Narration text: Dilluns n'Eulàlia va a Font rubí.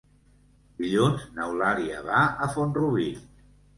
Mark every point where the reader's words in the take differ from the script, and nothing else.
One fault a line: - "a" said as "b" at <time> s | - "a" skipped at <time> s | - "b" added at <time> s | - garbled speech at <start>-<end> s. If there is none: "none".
none